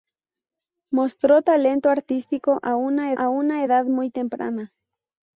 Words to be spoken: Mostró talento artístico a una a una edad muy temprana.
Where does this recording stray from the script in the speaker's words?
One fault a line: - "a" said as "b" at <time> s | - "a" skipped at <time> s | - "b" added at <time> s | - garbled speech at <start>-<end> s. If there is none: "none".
none